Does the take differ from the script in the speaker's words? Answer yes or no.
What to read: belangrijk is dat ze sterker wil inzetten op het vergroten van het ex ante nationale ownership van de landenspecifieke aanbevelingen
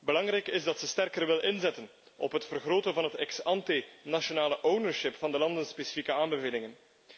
no